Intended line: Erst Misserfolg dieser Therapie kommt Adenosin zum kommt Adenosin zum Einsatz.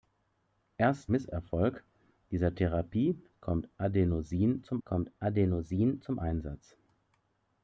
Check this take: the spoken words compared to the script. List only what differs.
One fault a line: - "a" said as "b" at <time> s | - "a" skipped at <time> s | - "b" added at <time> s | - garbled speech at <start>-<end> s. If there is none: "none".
none